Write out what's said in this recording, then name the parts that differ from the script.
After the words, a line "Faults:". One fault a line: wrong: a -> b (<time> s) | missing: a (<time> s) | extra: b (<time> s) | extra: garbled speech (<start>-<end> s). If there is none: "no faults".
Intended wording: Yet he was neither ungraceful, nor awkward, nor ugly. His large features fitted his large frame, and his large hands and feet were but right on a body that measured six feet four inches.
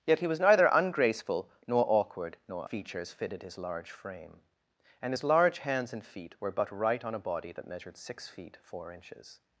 Yet he was neither ungraceful, nor awkward, nor features fitted his large frame, and his large hands and feet were but right on a body that measured six feet four inches.
Faults:
missing: ugly His large (2.7 s)